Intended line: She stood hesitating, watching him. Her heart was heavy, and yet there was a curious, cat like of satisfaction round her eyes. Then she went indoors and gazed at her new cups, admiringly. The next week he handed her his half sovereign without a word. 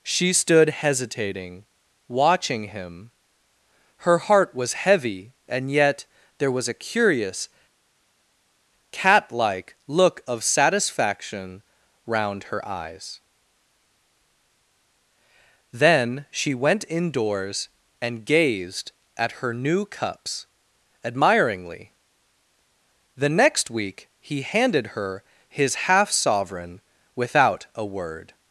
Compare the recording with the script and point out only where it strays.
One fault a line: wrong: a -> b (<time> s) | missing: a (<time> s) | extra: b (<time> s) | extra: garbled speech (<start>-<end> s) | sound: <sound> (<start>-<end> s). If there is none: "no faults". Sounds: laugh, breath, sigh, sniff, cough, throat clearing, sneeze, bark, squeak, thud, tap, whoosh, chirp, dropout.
extra: look (9.9 s)